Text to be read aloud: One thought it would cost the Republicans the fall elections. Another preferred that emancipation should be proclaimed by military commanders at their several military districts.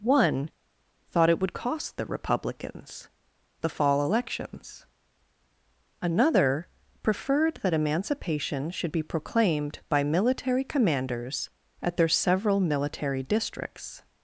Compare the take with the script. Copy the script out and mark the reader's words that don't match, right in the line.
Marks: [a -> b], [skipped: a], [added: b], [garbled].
One thought it would cost the Republicans the fall elections. Another preferred that emancipation should be proclaimed by military commanders at their several military districts.